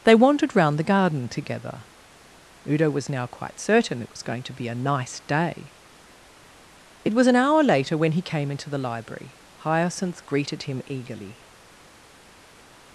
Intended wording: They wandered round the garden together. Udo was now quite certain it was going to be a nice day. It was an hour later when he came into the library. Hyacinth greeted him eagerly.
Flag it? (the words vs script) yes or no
no